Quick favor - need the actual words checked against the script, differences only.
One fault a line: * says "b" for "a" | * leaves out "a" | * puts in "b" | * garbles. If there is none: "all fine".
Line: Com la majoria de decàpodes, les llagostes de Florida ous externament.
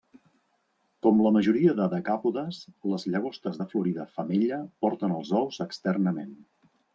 * puts in "femella porten els"